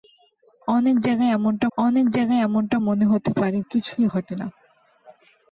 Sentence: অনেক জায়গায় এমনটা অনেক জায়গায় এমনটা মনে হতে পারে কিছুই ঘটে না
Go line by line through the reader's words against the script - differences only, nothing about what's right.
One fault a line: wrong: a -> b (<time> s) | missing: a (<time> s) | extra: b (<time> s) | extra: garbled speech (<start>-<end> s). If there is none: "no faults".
no faults